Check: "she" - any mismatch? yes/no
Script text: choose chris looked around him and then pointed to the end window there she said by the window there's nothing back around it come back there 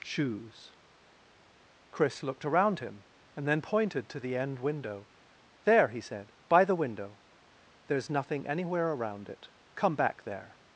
yes